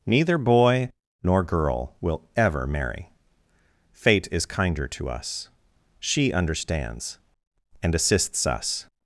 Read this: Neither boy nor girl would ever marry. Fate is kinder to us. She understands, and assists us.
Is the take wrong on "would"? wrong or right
wrong